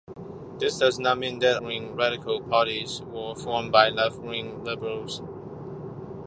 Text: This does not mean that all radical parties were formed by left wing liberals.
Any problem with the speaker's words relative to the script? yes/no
yes